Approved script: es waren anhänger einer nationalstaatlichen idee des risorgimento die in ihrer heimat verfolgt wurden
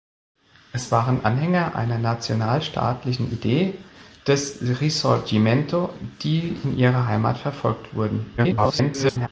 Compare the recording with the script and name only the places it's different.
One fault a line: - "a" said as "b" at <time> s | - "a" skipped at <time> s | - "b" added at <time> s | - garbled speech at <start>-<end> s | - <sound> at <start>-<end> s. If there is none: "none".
- garbled speech at 8.4-9.3 s